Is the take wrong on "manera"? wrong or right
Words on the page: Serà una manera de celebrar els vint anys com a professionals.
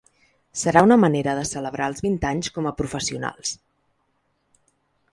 right